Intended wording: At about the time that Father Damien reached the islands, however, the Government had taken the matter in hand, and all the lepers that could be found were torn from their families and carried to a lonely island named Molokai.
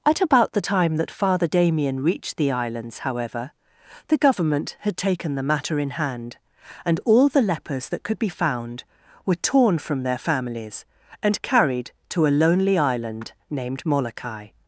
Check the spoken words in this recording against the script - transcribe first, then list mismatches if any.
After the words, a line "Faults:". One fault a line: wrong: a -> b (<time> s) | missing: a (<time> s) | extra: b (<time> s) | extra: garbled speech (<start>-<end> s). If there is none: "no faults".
At about the time that Father Damien reached the islands, however, the Government had taken the matter in hand, and all the lepers that could be found were torn from their families and carried to a lonely island named Molokai.
Faults:
no faults